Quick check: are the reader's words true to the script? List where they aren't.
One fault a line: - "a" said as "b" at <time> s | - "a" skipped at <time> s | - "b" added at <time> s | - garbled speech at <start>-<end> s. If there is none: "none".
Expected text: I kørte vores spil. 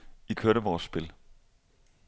none